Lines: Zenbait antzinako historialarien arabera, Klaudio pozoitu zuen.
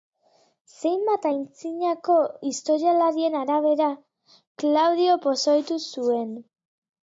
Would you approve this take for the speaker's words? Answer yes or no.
yes